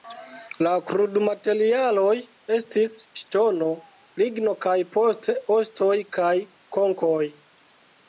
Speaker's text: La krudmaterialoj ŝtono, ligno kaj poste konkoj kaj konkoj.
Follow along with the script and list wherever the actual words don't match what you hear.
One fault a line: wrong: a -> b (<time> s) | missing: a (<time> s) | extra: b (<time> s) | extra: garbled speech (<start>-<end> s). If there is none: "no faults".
extra: estis (2.6 s)
wrong: konkoj -> ostoj (5.6 s)